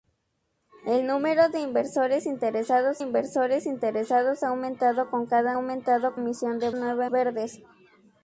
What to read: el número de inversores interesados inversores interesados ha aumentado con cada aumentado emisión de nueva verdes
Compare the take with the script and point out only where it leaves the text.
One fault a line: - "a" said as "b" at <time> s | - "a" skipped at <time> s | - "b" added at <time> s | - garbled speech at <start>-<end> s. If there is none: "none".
none